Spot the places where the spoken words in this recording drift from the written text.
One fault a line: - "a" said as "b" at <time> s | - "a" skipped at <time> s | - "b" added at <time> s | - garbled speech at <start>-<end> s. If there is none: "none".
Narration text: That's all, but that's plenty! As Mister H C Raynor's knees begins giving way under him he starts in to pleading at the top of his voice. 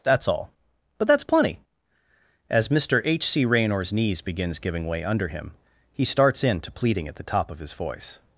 none